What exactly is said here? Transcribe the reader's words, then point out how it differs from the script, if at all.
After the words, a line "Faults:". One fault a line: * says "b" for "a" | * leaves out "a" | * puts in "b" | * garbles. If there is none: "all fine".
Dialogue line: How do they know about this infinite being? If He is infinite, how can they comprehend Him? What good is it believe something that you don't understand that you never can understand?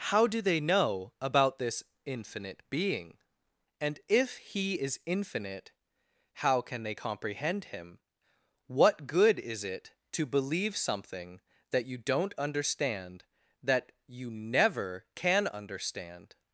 How do they know about this infinite being? And if He is infinite, how can they comprehend Him? What good is it to believe something that you don't understand that you never can understand?
Faults:
* puts in "And"
* puts in "to"